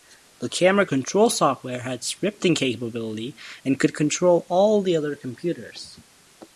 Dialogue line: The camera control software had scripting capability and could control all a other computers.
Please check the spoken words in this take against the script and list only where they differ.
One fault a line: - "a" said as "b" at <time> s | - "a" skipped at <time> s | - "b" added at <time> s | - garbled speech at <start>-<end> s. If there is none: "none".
- "a" said as "the" at 4.8 s